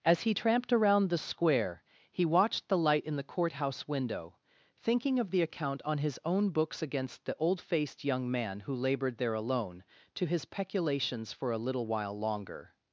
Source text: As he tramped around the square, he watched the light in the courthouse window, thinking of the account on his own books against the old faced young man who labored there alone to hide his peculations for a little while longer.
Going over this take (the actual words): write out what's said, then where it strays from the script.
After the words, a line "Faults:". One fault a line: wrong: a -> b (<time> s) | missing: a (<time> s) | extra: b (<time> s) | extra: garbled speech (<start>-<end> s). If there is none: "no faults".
As he tramped around the square, he watched the light in the courthouse window, thinking of the account on his own books against the old faced young man who labored there alone to his peculations for a little while longer.
Faults:
missing: hide (10.2 s)